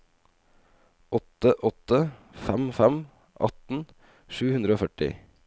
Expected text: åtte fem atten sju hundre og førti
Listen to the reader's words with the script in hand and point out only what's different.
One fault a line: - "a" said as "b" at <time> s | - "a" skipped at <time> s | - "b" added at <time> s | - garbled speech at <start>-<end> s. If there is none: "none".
- "åtte fem" added at 1.7 s